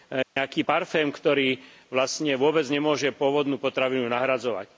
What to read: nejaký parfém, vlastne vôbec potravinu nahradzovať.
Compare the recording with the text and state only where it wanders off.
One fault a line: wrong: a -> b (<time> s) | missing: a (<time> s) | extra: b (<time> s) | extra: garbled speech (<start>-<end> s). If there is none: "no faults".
extra: ktorý (1.1 s)
extra: nemôže pôvodnú (2.7 s)